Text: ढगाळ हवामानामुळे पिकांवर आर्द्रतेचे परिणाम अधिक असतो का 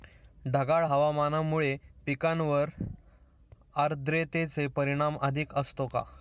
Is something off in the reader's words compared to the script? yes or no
no